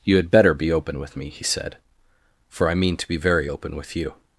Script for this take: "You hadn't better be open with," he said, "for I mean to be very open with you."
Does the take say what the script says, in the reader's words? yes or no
no